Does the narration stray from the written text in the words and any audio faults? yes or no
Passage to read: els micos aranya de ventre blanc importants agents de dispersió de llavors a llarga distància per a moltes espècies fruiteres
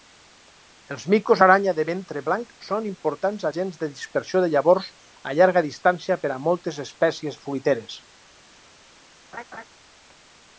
yes